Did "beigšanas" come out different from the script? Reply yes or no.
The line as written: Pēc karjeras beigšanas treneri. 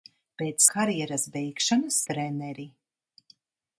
no